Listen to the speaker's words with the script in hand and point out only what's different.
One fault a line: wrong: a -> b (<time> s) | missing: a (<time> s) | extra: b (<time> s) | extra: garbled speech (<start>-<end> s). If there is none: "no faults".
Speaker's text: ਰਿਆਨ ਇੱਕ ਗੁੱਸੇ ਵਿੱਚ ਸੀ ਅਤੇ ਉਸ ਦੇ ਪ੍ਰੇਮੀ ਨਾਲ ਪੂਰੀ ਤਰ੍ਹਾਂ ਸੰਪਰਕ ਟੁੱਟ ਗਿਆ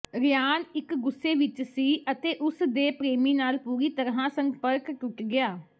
no faults